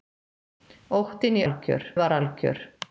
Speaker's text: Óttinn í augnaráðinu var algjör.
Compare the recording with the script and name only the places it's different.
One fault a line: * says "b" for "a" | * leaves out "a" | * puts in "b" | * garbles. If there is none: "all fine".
* says "algjör" for "augnaráðinu"